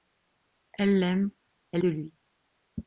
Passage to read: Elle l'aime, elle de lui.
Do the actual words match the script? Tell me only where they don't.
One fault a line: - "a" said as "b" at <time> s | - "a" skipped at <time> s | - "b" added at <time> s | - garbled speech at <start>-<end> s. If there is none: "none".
none